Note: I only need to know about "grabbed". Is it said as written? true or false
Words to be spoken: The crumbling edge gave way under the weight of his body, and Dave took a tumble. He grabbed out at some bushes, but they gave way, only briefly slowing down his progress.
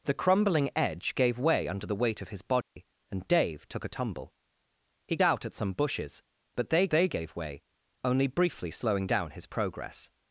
false